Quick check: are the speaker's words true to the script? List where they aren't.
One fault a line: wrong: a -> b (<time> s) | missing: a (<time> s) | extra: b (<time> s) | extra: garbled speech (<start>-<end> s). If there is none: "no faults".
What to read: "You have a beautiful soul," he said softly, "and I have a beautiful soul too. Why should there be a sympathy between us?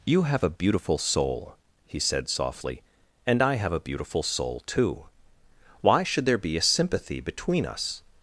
no faults